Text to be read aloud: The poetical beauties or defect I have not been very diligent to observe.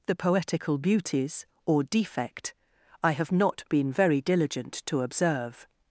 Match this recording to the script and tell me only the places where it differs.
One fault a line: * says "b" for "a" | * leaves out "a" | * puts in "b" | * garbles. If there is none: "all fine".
all fine